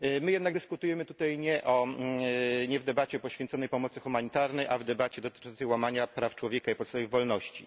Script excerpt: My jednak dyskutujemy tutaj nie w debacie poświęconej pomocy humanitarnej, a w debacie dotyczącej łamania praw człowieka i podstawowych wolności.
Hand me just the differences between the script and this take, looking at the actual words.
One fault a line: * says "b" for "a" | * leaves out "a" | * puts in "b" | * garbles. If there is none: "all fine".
all fine